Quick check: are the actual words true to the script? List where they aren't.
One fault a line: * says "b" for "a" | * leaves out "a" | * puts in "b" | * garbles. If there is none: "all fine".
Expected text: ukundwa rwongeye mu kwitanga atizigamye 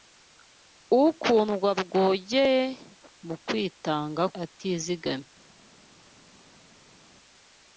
all fine